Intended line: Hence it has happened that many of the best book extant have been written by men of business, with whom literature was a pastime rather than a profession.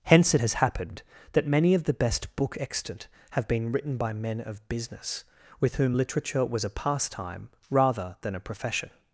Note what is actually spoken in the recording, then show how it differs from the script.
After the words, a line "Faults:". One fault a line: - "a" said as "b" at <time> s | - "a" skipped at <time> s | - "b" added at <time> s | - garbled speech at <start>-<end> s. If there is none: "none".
Hence it has happened that many of the best book extant have been written by men of business, with whom literature was a pastime rather than a profession.
Faults:
none